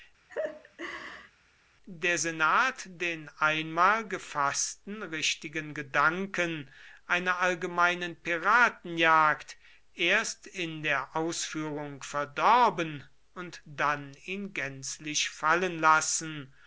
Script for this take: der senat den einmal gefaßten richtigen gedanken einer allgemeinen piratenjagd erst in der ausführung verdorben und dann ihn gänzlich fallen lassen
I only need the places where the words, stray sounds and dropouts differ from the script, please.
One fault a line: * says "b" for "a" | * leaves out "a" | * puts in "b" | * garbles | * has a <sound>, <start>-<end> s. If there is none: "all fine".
* has a laugh, 0.3-1.3 s